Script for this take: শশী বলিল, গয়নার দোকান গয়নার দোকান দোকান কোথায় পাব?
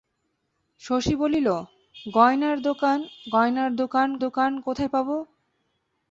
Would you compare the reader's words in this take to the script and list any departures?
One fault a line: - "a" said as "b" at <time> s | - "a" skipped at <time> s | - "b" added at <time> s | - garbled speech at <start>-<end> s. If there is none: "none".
none